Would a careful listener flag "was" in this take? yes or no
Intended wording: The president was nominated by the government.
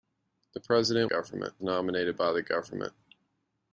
yes